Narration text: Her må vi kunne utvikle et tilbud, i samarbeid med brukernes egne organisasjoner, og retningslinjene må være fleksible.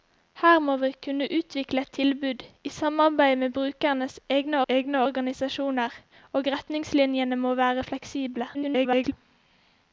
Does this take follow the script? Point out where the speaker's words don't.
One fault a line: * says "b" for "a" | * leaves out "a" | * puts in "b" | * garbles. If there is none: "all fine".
* puts in "egne"
* garbles